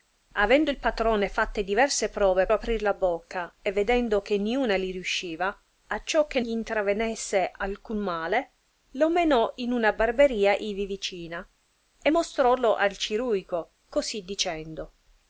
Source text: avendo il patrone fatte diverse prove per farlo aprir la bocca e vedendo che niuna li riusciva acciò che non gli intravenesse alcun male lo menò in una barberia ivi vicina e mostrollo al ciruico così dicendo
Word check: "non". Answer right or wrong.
wrong